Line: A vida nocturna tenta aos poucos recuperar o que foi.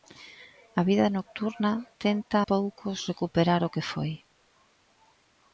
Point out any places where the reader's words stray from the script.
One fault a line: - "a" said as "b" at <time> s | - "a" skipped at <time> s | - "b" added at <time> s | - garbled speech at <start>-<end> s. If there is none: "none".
- "aos" skipped at 2.4 s